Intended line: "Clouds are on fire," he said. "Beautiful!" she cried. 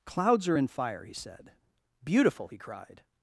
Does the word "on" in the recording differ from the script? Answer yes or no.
yes